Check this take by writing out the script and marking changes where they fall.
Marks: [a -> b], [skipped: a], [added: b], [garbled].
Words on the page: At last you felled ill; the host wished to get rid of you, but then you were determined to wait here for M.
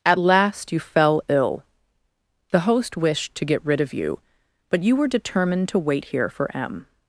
At last you [felled -> fell] ill; the host wished to get rid of you, but [skipped: then] you were determined to wait here for M.